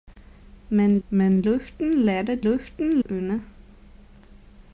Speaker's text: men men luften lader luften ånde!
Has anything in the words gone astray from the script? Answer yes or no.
no